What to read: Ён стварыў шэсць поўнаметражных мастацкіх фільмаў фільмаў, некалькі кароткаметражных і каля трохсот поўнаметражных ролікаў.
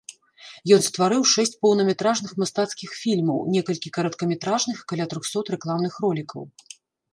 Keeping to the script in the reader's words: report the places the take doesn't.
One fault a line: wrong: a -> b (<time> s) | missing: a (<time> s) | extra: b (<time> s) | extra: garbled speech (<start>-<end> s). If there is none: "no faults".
missing: фільмаў (3.5 s)
wrong: поўнаметражных -> рэкламных (5.6 s)